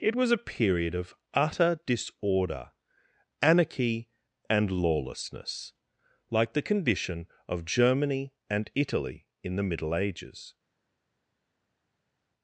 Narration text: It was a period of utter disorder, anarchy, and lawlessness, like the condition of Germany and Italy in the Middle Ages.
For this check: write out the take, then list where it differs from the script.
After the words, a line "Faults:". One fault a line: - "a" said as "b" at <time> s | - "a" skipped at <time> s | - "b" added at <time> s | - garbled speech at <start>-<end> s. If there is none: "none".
It was a period of utter disorder, anarchy, and lawlessness, like the condition of Germany and Italy in the Middle Ages.
Faults:
none